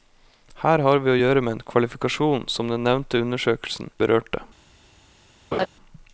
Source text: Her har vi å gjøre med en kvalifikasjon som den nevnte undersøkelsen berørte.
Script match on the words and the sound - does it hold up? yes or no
no